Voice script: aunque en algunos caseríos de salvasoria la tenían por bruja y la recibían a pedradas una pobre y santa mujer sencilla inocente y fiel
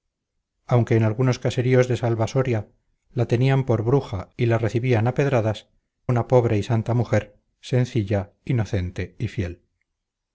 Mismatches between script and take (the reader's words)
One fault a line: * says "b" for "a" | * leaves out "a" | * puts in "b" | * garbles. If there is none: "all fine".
all fine